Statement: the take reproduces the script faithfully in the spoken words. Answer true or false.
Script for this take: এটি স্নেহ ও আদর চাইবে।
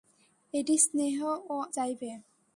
false